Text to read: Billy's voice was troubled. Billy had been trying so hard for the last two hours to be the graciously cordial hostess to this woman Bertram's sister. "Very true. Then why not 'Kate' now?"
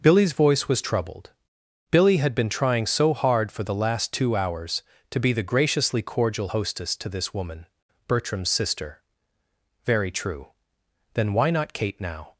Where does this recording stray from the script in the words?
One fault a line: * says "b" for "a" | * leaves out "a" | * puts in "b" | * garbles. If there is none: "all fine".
all fine